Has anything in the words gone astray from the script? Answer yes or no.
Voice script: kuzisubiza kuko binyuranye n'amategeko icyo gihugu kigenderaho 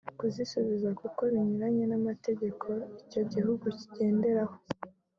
no